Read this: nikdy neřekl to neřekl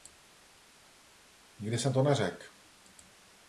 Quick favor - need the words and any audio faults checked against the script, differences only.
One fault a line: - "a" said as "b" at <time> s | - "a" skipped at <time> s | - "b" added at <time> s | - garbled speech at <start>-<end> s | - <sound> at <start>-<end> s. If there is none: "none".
- "neřekl" said as "jsem" at 1.8 s